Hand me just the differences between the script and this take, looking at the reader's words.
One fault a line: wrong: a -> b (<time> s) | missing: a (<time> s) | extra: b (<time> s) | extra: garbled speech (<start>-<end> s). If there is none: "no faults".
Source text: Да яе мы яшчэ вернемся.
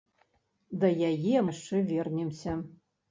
missing: мы (1.4 s)